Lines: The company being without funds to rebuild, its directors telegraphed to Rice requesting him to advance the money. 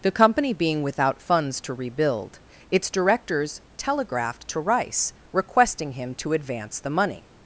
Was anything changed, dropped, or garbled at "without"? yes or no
no